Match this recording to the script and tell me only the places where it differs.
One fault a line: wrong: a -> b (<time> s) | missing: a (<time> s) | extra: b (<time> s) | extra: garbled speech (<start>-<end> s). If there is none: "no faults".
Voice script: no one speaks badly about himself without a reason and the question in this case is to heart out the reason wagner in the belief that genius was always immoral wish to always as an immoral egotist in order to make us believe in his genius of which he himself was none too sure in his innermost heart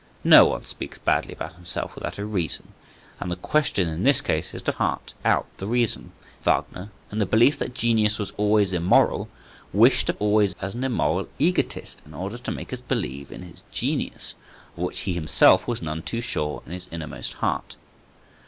no faults